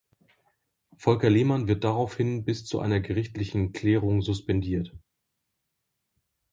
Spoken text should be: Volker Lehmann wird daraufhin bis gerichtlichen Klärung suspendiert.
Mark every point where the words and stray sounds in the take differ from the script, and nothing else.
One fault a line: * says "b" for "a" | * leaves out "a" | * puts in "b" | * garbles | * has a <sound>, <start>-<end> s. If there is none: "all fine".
* puts in "zu einer"